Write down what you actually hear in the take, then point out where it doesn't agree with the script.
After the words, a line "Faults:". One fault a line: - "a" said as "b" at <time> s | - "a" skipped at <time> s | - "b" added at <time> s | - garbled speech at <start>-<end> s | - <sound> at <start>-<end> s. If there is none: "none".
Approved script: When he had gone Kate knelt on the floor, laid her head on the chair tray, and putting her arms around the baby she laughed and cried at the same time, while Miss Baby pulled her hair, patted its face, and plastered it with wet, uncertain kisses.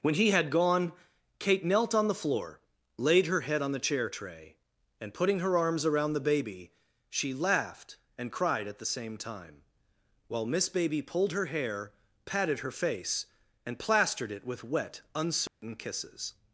When he had gone Kate knelt on the floor, laid her head on the chair tray, and putting her arms around the baby she laughed and cried at the same time, while Miss Baby pulled her hair, patted her face, and plastered it with wet, uncertain kisses.
Faults:
- "its" said as "her" at 12.6 s
- dropout at 15.5-15.6 s